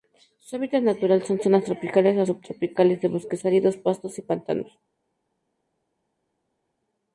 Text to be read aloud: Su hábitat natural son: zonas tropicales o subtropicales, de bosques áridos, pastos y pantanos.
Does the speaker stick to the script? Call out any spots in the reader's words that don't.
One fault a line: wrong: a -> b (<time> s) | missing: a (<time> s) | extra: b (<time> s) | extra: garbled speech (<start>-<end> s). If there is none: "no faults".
no faults